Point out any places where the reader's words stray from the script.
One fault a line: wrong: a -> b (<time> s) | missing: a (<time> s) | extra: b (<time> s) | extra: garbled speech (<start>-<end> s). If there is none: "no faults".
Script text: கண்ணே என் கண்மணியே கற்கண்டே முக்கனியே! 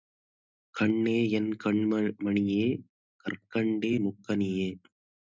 no faults